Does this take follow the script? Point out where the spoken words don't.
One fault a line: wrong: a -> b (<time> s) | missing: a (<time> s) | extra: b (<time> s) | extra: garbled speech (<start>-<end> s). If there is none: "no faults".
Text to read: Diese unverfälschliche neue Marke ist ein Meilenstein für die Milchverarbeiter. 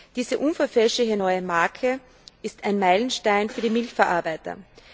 no faults